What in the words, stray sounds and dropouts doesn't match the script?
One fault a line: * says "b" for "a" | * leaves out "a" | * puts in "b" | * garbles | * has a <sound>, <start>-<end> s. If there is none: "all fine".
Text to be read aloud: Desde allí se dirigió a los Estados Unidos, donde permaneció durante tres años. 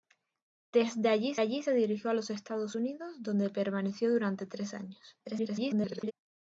* puts in "allí"
* garbles